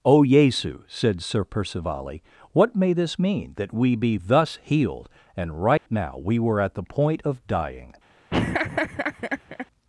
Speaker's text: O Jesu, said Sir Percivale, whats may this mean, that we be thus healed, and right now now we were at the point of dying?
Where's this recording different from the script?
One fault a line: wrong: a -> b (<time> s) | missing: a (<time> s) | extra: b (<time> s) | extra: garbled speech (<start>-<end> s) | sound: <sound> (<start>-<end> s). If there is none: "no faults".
wrong: whats -> what (2.5 s)
sound: dropout (5.8-5.9 s)
missing: now (6.2 s)
sound: laugh (8.3-9.7 s)